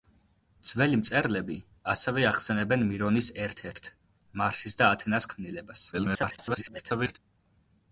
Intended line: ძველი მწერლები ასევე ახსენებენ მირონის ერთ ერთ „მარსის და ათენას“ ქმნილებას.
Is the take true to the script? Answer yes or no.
no